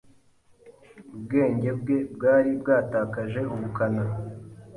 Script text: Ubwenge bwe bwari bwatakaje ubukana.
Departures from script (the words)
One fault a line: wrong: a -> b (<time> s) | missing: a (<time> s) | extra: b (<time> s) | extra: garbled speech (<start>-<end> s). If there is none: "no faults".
no faults